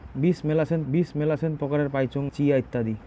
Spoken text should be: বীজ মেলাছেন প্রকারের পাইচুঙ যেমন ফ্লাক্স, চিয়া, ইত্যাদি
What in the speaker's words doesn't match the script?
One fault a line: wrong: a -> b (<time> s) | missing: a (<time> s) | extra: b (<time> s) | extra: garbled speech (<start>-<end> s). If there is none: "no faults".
extra: বীজ মেলাছেন (0.9 s)
missing: যেমন ফ্লাক্স (2.2 s)